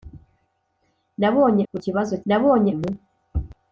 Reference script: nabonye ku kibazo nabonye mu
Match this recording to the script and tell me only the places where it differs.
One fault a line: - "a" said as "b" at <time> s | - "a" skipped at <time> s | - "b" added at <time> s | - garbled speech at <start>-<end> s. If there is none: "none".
none